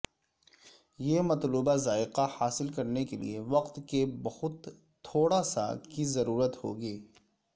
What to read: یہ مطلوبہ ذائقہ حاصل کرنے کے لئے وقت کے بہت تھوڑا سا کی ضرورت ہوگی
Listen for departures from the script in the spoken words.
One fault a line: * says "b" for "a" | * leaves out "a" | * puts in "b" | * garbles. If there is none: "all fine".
all fine